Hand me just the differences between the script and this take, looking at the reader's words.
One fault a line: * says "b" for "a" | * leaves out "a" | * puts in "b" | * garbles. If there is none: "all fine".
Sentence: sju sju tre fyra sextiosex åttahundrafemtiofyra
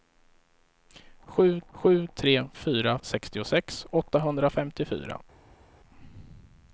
all fine